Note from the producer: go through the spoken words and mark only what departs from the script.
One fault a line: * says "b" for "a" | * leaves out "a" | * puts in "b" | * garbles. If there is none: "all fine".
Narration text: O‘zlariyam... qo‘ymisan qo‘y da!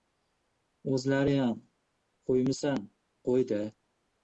all fine